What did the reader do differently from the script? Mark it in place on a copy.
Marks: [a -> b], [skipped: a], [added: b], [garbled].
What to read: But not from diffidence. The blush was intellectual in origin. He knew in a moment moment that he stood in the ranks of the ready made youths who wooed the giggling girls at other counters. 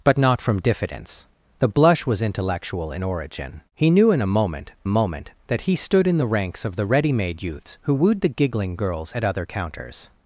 But not from diffidence. The blush was intellectual in origin. He knew in a moment moment that he stood in the ranks of the ready made youths who wooed the giggling girls at other counters.